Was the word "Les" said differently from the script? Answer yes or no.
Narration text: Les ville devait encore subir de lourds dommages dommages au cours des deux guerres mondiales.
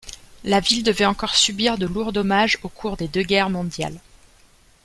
yes